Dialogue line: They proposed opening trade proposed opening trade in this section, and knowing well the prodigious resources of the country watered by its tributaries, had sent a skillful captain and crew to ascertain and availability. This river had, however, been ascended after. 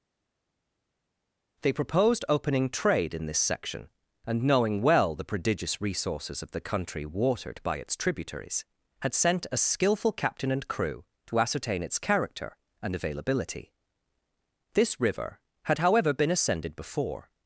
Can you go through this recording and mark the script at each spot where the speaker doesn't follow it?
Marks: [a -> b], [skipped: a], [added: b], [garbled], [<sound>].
They proposed opening trade [skipped: proposed opening trade] in this section, and knowing well the prodigious resources of the country watered by its tributaries, had sent a skillful captain and crew to ascertain [added: its character] and availability. This river had, however, been ascended [after. -> before]